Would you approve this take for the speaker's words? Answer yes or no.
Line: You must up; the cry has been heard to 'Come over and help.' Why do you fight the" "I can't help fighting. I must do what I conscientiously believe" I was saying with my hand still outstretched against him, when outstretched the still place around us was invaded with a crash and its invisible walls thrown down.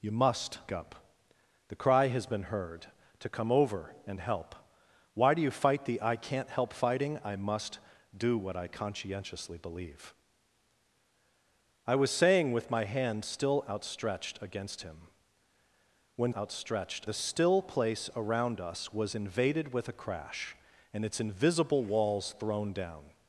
yes